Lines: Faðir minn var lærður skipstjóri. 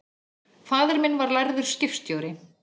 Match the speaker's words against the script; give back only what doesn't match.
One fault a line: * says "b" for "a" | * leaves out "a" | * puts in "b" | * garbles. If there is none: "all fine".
all fine